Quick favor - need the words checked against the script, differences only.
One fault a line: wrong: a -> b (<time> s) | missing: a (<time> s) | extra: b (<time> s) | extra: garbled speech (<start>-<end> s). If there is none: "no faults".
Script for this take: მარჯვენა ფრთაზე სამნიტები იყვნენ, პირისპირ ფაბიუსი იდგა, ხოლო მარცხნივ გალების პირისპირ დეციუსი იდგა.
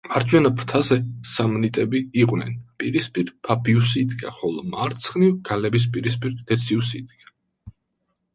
no faults